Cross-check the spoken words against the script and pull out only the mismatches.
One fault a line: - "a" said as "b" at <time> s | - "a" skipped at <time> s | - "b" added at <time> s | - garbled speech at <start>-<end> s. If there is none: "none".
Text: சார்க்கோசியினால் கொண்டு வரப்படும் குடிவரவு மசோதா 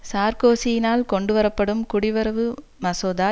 none